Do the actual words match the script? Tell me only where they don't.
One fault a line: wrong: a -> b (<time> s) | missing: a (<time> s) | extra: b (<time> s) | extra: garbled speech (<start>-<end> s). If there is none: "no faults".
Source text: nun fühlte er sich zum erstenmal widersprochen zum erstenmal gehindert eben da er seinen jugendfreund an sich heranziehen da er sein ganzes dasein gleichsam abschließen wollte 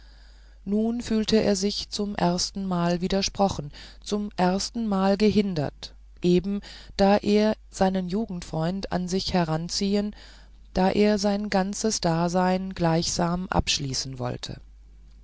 no faults